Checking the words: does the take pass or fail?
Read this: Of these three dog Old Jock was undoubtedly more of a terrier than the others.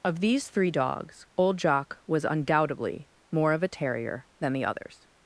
fail